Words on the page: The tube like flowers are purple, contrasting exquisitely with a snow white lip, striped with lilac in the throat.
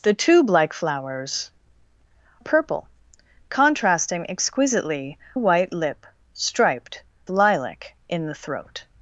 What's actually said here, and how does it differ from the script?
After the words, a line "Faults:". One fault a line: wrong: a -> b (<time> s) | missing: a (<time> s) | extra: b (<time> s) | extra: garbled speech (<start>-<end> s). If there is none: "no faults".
The tube like flowers purple, contrasting exquisitely white lip, striped lilac in the throat.
Faults:
missing: are (1.5 s)
missing: with a snow (5.2 s)
missing: with (7.0 s)